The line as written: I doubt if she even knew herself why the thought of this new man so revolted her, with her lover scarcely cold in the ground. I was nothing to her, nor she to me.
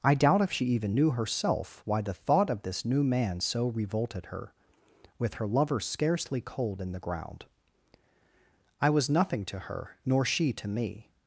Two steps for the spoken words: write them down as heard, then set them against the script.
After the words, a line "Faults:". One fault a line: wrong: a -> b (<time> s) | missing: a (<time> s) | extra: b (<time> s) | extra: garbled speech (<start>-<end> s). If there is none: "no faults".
I doubt if she even knew herself why the thought of this new man so revolted her, with her lover scarcely cold in the ground. I was nothing to her, nor she to me.
Faults:
no faults